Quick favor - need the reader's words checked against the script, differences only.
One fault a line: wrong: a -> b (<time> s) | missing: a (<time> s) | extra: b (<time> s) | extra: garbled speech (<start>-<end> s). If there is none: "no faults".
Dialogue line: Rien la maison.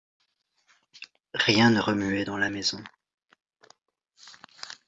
extra: ne remuait dans (1.7 s)